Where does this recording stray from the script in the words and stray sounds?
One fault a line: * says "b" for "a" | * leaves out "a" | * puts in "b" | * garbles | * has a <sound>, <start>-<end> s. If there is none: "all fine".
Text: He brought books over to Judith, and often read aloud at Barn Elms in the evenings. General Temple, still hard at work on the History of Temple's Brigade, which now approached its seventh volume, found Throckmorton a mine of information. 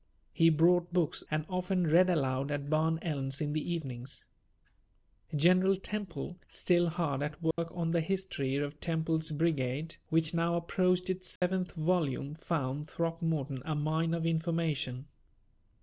* leaves out "over to Judith"
* has a dropout, 7.5-7.6 s
* has a dropout, 11.4-11.4 s